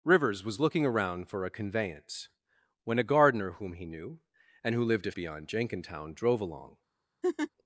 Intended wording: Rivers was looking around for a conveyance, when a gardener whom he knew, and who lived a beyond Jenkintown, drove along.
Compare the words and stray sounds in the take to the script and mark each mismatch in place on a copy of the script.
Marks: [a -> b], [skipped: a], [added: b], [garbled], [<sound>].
Rivers was looking around for a conveyance, when a gardener whom he knew, and who lived a beyond Jenkintown, drove along. [laugh]